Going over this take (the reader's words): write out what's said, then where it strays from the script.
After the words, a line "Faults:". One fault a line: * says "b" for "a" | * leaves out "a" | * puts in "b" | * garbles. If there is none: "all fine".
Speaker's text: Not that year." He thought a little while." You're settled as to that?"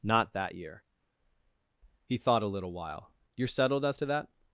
Not that year." He thought a little while." You're settled as to that?"
Faults:
all fine